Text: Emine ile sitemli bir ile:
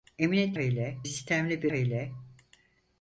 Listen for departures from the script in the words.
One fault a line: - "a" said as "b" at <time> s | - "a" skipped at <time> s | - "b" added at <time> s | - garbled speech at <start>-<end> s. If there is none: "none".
none